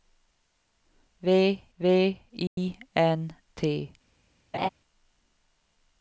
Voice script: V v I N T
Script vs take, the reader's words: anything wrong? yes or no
no